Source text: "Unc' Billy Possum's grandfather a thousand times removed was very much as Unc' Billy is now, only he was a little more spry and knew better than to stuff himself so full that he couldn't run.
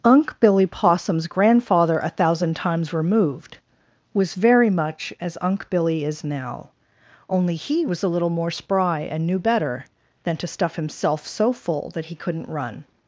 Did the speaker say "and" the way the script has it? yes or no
yes